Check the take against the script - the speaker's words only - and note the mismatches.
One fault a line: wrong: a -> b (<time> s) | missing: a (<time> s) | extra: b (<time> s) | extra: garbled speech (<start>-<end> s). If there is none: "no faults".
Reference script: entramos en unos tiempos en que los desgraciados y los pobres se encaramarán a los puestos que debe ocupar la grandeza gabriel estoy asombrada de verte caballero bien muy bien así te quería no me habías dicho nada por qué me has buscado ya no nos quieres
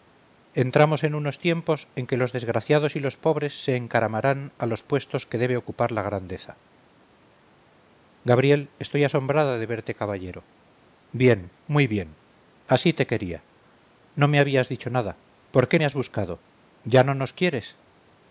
no faults